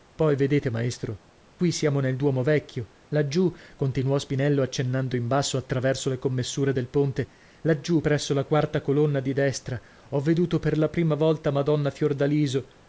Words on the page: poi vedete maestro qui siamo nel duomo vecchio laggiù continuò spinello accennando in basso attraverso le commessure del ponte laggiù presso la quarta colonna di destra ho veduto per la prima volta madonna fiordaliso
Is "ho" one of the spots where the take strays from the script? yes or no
no